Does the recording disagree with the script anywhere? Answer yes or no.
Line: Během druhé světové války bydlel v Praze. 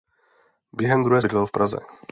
yes